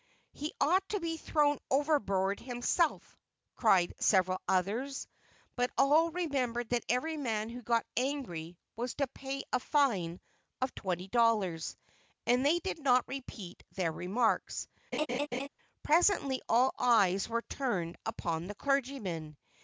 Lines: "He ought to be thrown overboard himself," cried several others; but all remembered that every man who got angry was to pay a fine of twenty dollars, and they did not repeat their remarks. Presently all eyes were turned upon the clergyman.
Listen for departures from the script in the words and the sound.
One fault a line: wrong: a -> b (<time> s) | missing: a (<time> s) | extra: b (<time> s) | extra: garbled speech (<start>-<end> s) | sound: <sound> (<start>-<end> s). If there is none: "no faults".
sound: laugh (14.9-15.5 s)